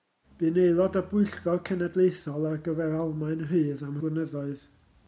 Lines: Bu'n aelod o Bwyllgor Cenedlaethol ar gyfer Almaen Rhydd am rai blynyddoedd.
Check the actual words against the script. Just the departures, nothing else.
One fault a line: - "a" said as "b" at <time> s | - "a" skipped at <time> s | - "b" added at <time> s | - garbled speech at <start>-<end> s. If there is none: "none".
- "rai" skipped at 4.0 s